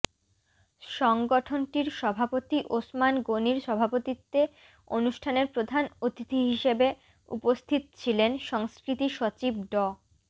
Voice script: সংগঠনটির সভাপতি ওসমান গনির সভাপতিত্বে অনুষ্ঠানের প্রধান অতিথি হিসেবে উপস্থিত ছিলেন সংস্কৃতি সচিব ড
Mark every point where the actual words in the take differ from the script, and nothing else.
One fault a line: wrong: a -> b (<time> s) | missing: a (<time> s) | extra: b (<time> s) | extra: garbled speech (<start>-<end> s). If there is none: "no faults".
no faults